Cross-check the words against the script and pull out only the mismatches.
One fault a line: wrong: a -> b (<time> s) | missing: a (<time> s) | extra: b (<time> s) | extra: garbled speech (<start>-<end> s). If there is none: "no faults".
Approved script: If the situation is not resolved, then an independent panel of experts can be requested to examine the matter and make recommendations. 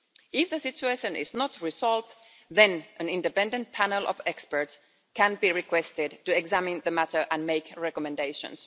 no faults